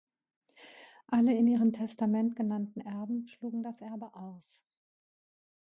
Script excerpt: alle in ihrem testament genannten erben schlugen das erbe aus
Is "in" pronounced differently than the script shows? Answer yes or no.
no